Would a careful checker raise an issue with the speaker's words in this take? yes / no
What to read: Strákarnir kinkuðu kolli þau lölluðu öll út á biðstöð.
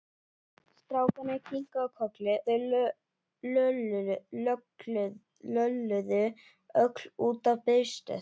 no